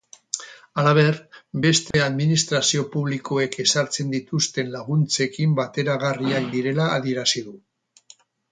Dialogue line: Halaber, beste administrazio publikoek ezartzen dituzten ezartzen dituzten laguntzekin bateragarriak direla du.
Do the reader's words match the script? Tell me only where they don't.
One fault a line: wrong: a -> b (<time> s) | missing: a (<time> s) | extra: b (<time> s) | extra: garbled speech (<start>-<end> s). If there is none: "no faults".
missing: ezartzen dituzten (4.7 s)
extra: adierazi (7.0 s)